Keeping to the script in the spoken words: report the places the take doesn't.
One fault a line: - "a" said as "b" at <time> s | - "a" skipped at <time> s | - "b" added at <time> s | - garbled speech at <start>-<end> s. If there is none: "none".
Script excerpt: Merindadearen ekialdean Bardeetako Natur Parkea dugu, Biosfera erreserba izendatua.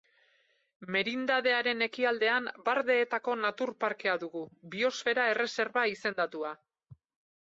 none